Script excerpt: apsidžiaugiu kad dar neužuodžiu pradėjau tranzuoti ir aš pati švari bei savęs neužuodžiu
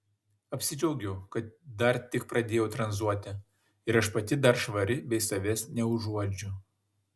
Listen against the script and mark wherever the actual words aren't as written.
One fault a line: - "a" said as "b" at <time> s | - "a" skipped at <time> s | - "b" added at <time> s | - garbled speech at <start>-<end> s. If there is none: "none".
- "neužuodžiu" said as "tik" at 2.1 s
- "dar" added at 4.5 s